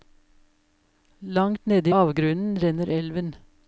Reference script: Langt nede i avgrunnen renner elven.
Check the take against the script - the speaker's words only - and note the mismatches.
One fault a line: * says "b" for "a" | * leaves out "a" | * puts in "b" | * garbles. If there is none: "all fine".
all fine